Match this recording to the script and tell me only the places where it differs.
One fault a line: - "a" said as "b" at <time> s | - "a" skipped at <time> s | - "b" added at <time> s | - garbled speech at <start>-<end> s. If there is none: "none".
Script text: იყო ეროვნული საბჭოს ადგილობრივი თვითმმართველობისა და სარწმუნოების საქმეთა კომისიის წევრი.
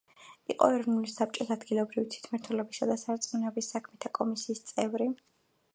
none